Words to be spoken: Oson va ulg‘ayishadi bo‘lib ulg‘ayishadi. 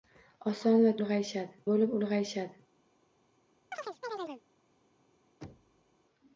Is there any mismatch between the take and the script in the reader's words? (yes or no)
no